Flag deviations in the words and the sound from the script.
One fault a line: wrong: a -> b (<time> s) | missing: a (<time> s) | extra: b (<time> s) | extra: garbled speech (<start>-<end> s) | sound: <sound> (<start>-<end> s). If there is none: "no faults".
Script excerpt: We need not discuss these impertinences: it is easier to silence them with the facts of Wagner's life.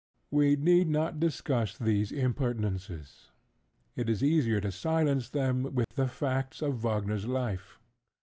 sound: dropout (5.8-5.9 s)